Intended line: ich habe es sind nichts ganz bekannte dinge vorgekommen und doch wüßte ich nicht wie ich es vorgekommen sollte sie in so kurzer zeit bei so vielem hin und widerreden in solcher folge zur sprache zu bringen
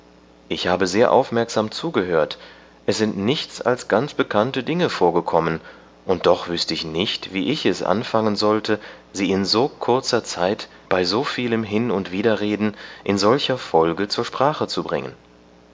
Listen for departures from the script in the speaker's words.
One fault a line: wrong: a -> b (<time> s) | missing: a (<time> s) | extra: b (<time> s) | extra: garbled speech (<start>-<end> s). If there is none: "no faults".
extra: sehr aufmerksam zugehört (0.9 s)
extra: als (3.6 s)
wrong: vorgekommen -> anfangen (7.8 s)